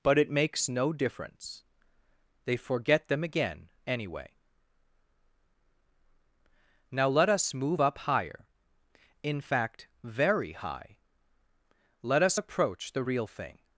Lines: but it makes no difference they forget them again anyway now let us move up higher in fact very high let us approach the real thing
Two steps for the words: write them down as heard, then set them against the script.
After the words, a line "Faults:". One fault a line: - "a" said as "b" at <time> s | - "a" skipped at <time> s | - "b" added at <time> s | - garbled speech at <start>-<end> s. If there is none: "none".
but it makes no difference they forget them again anyway now let us move up higher in fact very high let us approach the real thing
Faults:
none